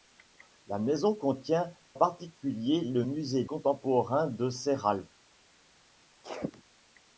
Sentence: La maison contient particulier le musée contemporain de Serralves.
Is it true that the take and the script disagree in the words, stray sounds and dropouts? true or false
true